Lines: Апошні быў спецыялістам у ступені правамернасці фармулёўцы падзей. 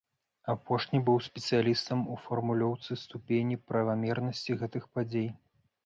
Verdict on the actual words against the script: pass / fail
fail